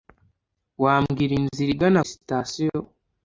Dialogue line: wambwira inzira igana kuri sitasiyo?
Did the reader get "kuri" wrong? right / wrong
wrong